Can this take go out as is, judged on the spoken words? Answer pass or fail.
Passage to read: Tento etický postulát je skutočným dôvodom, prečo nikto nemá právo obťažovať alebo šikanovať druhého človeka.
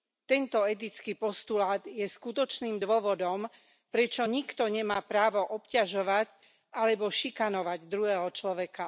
pass